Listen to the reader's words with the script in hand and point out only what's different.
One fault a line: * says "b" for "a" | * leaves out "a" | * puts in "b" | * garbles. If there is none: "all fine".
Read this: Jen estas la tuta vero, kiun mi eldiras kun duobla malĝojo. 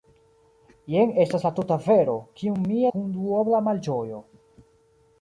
* leaves out "eldiras"